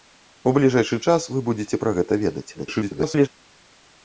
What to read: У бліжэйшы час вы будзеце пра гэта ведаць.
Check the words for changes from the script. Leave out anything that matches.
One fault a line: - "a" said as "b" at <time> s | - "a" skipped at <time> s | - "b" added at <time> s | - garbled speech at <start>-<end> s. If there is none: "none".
- garbled speech at 2.5-3.3 s